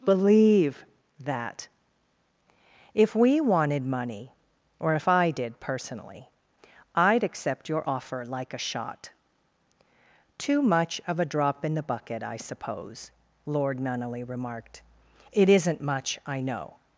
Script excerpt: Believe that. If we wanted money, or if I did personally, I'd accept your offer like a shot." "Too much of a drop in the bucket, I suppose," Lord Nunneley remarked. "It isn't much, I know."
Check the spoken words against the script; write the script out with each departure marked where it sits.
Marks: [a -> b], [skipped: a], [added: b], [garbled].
Believe that. If we wanted money, or if I did personally, I'd accept your offer like a shot." "Too much of a drop in the bucket, I suppose," Lord Nunneley remarked. "It isn't much, I know."